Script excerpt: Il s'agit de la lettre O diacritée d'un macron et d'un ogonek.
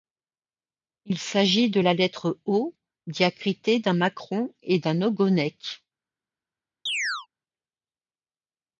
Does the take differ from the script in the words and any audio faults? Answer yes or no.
yes